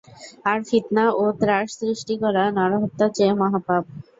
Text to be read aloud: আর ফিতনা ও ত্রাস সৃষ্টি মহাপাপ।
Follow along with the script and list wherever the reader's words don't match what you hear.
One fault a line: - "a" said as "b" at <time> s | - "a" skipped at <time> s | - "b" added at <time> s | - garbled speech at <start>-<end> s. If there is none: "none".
- "করা নরহত্যার চেয়ে" added at 2.2 s